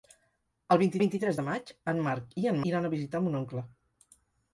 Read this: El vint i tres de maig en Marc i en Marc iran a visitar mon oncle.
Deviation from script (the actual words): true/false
true